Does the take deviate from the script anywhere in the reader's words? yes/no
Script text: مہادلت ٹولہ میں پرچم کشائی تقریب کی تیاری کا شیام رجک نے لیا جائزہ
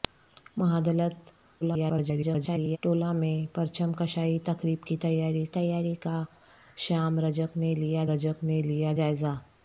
yes